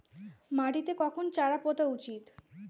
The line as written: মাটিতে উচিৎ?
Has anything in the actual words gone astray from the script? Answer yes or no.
yes